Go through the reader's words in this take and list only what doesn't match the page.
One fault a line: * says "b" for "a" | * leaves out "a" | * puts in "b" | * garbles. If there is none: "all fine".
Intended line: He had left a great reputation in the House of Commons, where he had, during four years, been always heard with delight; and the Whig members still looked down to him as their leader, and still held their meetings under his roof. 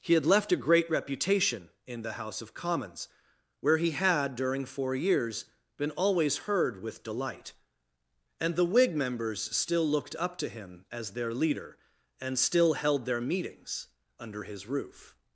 * says "up" for "down"